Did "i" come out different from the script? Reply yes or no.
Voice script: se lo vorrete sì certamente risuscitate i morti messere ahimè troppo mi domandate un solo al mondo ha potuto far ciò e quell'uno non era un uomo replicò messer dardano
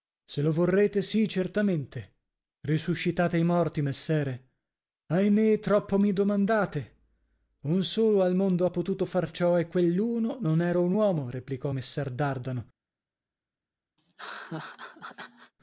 no